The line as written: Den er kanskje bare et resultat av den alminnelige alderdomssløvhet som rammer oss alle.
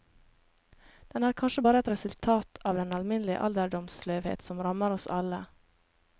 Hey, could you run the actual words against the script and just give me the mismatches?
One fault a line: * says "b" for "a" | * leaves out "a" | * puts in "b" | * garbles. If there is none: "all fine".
all fine